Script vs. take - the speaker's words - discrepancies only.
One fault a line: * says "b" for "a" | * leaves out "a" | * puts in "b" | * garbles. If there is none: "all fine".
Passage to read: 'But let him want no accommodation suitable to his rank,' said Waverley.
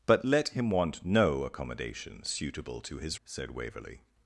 * leaves out "rank"